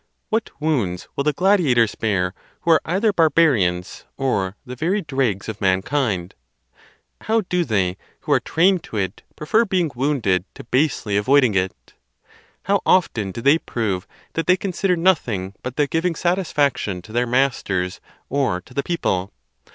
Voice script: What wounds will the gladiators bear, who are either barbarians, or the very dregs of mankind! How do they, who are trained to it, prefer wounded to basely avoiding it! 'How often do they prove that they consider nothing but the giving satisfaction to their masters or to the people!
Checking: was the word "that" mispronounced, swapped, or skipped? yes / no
no